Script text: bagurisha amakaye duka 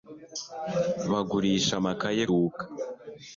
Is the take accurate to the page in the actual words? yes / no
yes